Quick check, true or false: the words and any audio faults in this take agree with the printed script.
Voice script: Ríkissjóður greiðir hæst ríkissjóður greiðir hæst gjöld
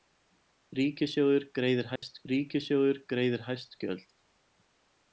false